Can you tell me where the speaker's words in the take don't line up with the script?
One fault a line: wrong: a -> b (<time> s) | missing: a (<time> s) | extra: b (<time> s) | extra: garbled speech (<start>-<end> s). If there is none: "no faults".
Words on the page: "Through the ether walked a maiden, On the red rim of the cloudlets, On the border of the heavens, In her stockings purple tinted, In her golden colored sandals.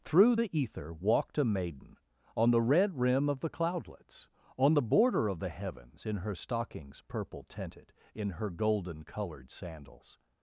no faults